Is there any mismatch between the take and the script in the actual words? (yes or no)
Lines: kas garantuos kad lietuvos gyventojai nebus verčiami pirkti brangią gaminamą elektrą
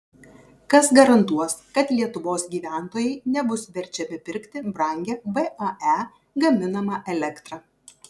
yes